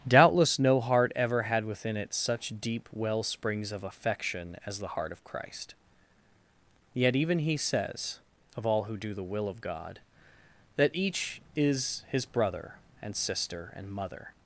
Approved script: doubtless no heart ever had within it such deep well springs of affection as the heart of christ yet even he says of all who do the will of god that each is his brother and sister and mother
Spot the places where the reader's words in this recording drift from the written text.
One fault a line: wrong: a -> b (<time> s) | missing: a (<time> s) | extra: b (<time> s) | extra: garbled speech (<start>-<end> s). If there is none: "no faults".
no faults